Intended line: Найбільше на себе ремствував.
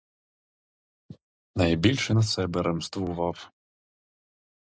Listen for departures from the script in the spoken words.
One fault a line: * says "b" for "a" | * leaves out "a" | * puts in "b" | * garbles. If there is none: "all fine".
all fine